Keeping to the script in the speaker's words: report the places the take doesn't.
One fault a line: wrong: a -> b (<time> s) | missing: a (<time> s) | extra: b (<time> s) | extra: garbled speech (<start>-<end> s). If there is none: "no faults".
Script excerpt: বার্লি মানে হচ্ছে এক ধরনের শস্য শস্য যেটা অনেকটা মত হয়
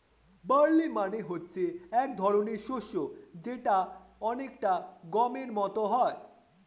missing: শস্য (2.9 s)
extra: গমের (5.1 s)